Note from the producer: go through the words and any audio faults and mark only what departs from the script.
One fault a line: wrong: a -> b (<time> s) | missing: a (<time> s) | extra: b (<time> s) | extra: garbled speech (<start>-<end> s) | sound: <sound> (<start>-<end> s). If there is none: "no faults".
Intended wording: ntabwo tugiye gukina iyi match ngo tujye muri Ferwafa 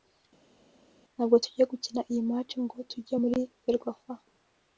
no faults